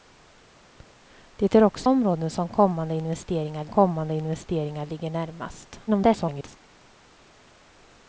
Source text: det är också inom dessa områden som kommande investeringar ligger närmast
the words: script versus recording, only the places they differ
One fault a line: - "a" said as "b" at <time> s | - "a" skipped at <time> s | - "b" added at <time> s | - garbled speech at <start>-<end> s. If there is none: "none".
- "inom dessa områden som" said as "områden som kommande investeringar" at 1.9 s
- garbled speech at 5.9-6.6 s